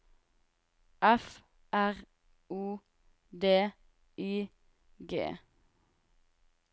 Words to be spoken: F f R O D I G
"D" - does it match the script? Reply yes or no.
yes